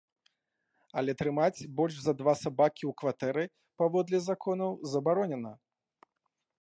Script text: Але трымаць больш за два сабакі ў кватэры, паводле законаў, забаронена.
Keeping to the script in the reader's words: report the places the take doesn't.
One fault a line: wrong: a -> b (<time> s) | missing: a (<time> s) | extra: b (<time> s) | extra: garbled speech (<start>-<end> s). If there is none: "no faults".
no faults